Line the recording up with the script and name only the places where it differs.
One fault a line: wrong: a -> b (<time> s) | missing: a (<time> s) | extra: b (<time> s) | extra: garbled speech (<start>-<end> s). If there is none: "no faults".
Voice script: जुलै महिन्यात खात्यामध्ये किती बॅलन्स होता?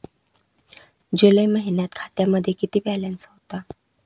no faults